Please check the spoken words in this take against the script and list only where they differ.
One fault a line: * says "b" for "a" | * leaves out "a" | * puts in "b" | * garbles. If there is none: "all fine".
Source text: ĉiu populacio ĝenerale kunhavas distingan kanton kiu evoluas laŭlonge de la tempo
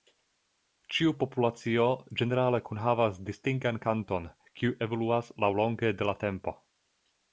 all fine